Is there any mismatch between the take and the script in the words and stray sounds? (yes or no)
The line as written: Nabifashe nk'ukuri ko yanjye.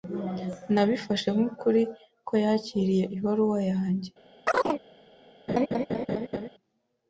yes